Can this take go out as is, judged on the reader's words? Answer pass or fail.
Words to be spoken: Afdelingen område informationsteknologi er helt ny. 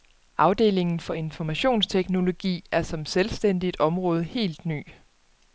fail